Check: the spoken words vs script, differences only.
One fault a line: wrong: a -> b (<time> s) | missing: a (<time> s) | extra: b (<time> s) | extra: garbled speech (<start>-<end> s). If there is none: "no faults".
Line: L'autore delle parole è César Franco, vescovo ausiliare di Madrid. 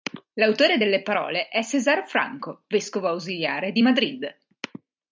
no faults